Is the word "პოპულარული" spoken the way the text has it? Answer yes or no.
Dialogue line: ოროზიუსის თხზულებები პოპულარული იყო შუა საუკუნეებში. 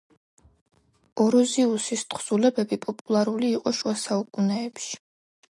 yes